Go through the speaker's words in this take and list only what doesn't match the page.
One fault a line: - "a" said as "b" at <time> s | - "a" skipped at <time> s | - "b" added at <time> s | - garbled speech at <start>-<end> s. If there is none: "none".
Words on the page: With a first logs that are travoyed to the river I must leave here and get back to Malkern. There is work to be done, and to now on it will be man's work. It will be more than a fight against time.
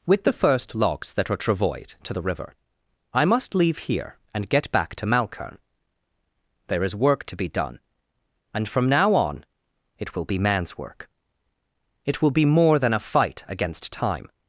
- "a" said as "the" at 0.2 s
- "to" said as "from" at 8.7 s